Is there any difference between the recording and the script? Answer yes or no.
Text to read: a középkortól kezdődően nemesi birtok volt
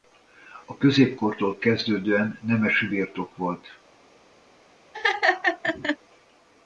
no